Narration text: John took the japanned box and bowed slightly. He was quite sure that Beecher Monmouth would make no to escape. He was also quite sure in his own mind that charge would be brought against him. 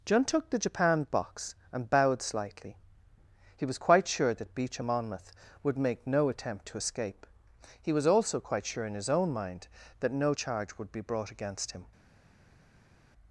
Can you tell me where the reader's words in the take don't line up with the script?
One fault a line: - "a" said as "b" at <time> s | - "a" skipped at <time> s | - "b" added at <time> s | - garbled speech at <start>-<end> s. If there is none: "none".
- "attempt" added at 6.3 s
- "no" added at 10.1 s